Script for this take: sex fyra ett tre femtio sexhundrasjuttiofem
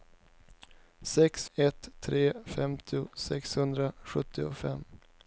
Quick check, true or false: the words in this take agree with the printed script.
false